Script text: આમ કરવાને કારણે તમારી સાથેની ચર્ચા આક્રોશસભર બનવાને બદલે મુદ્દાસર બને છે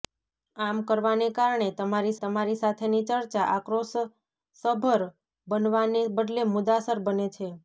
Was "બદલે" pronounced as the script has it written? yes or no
yes